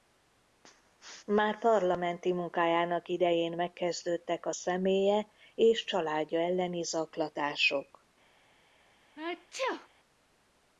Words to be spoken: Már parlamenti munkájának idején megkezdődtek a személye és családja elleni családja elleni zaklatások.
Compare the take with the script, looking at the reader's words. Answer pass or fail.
fail